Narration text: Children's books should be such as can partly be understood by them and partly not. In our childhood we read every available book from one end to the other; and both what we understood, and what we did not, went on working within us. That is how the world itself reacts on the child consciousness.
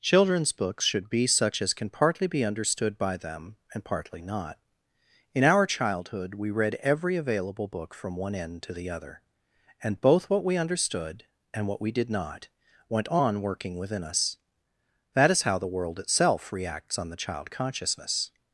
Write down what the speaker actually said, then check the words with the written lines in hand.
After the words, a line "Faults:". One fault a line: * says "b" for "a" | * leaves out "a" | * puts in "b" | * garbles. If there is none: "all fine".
Children's books should be such as can partly be understood by them and partly not. In our childhood we read every available book from one end to the other; and both what we understood, and what we did not, went on working within us. That is how the world itself reacts on the child consciousness.
Faults:
all fine